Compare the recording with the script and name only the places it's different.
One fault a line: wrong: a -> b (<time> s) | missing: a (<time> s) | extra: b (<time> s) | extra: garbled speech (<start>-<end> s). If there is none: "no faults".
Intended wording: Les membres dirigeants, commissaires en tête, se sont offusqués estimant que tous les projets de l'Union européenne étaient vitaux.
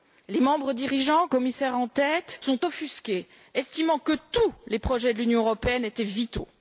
missing: se (2.4 s)